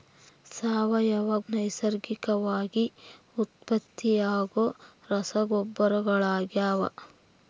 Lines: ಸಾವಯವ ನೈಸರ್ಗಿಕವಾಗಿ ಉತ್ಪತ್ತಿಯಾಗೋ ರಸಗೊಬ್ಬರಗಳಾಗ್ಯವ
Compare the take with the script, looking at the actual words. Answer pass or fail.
pass